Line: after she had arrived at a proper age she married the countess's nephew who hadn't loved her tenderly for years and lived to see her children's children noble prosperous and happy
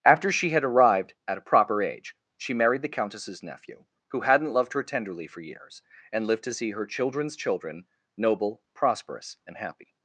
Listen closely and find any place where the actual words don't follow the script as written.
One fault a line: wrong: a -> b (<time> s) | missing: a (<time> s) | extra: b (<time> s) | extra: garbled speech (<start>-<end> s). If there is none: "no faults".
no faults